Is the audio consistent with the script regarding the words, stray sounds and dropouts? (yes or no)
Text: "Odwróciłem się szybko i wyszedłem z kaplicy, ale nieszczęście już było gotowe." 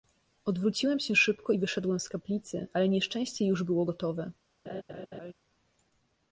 no